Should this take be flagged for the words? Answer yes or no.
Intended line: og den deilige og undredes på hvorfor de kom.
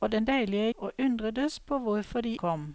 no